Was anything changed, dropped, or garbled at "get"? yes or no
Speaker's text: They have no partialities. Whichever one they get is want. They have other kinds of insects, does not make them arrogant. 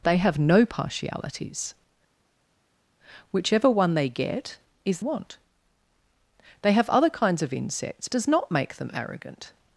no